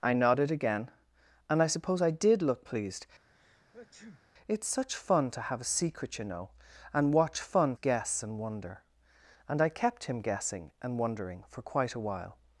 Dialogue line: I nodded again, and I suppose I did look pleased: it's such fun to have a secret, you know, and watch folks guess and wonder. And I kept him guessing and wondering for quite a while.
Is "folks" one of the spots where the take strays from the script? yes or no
yes